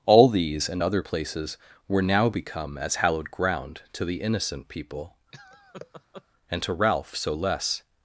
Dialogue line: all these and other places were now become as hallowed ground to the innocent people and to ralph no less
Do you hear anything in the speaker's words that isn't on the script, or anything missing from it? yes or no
yes